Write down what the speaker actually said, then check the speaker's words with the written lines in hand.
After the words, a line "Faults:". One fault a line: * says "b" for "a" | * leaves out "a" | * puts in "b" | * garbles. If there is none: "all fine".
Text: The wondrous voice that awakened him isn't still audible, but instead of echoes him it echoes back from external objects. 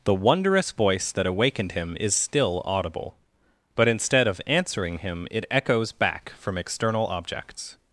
The wondrous voice that awakened him is still audible, but instead of answering him it echoes back from external objects.
Faults:
* says "is" for "isn't"
* says "answering" for "echoes"